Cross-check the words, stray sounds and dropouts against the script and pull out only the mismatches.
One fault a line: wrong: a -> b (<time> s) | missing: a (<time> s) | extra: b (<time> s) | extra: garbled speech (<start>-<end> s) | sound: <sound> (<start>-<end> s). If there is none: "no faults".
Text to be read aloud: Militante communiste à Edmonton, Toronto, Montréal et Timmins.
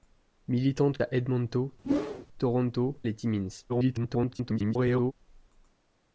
missing: communiste (1.0 s)
sound: whoosh (1.8-2.3 s)
missing: Montréal (3.0 s)
extra: garbled speech (3.7-5.1 s)